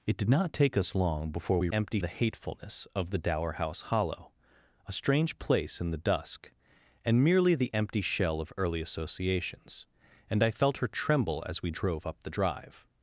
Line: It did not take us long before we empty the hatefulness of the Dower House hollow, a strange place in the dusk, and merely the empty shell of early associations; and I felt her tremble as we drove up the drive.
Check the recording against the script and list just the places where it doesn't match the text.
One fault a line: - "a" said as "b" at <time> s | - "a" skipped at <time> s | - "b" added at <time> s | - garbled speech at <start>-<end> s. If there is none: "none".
none